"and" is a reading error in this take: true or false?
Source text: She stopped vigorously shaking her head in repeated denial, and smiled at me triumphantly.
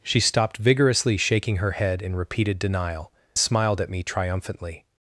true